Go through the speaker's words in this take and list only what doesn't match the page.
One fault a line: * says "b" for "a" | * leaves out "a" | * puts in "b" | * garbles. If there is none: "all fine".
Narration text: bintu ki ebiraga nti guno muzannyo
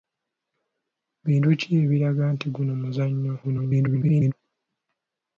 * garbles